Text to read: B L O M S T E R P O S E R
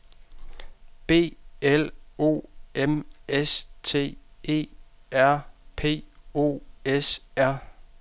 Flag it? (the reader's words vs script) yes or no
yes